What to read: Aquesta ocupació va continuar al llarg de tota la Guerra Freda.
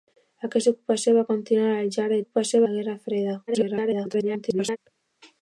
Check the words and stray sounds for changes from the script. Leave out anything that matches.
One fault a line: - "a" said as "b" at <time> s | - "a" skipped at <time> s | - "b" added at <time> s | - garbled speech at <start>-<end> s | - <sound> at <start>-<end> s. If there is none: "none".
- "tota" said as "ocupació" at 2.2 s
- garbled speech at 3.5-4.8 s